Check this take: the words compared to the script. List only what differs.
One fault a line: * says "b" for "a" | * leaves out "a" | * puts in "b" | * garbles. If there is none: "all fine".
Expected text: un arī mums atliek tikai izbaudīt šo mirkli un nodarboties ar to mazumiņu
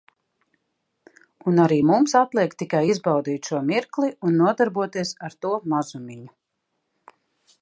all fine